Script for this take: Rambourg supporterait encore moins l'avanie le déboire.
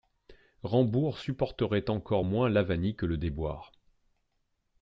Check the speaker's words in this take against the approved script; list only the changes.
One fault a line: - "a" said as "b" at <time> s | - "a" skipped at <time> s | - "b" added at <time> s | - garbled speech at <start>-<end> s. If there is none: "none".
- "que" added at 2.9 s